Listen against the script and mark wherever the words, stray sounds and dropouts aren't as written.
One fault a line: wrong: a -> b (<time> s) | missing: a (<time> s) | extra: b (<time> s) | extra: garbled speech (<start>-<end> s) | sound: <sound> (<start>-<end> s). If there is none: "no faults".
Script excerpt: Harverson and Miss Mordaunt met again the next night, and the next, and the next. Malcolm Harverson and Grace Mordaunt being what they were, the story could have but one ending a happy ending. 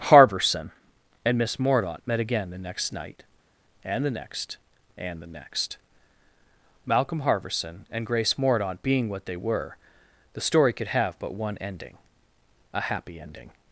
no faults